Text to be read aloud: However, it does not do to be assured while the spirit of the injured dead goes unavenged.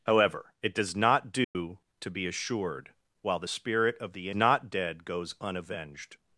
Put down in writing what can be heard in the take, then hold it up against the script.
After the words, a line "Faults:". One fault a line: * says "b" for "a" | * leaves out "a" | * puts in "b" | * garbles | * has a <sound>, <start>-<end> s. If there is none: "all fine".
However, it does not do to be assured while the spirit of the not dead goes unavenged.
Faults:
* has a dropout, 1.4-1.6 s
* says "not" for "injured"